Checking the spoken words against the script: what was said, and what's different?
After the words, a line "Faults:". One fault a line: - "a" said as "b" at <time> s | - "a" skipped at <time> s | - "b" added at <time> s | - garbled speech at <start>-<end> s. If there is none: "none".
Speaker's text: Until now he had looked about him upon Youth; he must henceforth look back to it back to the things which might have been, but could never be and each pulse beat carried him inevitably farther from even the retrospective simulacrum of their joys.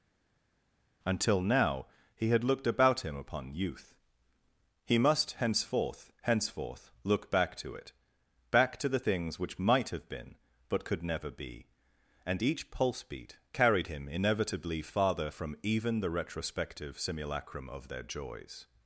Until now he had looked about him upon Youth; he must henceforth henceforth look back to it back to the things which might have been, but could never be and each pulse beat carried him inevitably farther from even the retrospective simulacrum of their joys.
Faults:
- "henceforth" added at 6.2 s